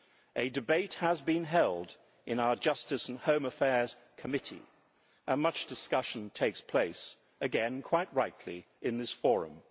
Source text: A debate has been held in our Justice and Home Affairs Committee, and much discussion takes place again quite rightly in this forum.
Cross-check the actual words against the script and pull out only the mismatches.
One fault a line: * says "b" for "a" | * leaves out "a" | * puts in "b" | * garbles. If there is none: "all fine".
all fine